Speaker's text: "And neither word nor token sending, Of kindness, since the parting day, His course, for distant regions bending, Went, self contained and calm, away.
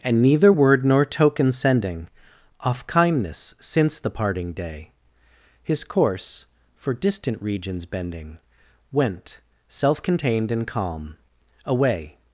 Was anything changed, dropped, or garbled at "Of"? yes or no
yes